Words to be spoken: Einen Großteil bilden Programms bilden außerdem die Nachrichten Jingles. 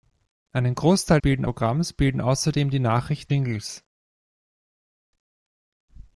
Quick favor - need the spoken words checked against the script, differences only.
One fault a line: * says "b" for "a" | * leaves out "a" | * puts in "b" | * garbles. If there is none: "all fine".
all fine